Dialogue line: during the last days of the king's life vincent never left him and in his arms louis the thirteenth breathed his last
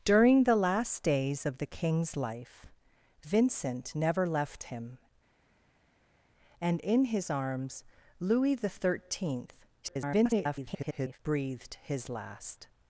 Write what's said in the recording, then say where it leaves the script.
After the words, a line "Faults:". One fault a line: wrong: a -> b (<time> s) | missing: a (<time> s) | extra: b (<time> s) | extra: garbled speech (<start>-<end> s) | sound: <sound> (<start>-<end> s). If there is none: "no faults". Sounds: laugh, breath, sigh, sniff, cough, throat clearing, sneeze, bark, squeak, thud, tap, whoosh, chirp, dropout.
during the last days of the king's life vincent never left him and in his arms louis the thirteenth [garbled] breathed his last
Faults:
extra: garbled speech (9.8-11.2 s)